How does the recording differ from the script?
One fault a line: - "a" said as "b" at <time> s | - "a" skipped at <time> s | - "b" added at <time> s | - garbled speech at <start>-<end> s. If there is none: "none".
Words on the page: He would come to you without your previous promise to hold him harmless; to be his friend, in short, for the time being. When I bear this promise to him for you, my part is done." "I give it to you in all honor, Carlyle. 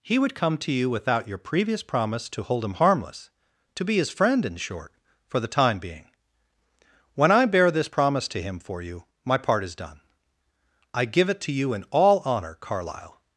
none